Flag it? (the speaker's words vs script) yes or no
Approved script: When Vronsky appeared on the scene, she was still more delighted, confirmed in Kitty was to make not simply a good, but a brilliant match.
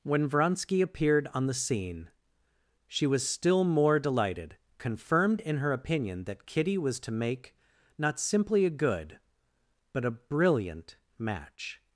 yes